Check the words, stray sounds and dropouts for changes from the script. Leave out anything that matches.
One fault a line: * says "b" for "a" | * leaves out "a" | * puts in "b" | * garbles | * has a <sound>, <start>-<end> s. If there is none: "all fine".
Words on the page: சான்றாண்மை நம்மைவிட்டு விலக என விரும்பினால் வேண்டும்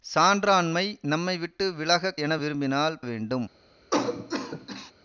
* has a cough, 3.9-4.9 s